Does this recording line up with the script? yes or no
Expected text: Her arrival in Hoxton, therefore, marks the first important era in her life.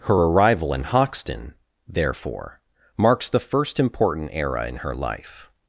yes